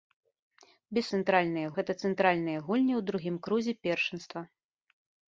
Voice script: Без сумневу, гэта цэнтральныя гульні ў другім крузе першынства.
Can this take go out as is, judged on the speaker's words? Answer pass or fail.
fail